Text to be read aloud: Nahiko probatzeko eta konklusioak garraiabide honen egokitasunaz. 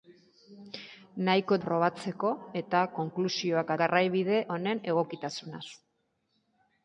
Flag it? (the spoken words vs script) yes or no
no